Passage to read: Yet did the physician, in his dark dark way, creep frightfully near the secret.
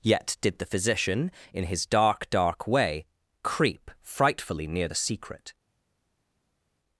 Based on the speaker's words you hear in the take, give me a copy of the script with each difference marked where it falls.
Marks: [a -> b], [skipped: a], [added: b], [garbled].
Yet did the physician, in his dark dark way, creep frightfully near the secret.